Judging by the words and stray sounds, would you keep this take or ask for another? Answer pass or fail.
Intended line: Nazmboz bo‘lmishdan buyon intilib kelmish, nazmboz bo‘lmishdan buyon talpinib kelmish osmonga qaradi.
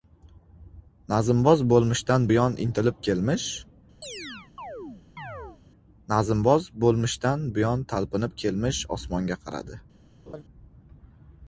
fail